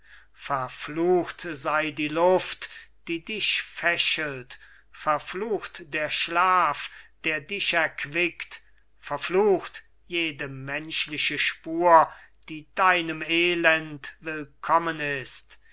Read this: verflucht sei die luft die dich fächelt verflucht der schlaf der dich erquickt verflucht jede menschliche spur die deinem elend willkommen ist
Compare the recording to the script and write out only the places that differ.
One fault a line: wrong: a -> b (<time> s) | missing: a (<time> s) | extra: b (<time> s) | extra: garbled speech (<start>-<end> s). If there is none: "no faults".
no faults